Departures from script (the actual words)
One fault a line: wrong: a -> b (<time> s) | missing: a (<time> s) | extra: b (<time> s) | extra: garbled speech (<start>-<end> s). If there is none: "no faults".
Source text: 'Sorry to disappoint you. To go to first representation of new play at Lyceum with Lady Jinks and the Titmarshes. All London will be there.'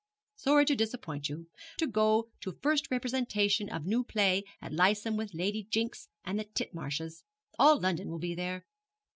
no faults